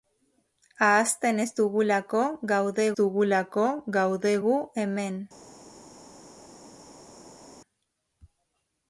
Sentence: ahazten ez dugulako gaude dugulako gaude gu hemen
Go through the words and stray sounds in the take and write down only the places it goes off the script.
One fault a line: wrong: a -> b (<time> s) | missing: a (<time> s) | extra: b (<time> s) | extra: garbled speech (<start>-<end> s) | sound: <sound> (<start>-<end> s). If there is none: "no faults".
no faults